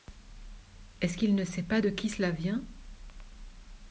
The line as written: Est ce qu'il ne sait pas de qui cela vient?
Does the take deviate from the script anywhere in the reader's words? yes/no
no